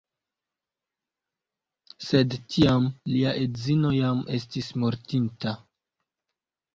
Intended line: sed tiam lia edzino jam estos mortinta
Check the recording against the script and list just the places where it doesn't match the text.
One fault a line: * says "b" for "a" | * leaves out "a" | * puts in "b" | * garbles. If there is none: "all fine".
* says "estis" for "estos"